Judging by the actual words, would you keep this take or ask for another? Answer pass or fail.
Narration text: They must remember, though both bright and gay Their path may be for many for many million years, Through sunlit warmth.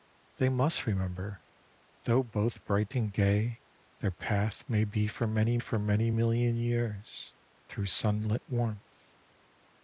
pass